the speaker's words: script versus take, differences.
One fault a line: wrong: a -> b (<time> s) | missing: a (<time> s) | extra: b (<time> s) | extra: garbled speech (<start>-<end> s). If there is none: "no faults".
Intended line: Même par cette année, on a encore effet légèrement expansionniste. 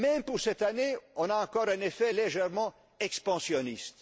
wrong: par -> pour (0.2 s)
extra: un (1.7 s)